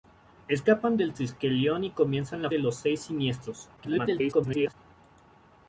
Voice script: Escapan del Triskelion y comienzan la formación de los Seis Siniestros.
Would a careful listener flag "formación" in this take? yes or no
yes